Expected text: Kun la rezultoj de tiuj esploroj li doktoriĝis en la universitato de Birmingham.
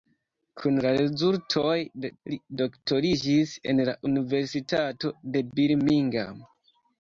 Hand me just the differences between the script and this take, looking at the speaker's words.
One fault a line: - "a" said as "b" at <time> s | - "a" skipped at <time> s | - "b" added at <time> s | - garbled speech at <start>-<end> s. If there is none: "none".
- "tiuj esploroj" skipped at 2.1 s